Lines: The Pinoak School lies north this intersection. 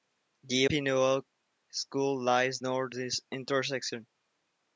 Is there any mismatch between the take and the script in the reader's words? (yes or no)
no